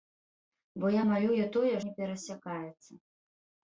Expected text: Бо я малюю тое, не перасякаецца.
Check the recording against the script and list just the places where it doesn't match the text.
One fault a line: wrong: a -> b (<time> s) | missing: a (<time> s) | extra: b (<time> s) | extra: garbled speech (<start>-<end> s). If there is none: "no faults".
no faults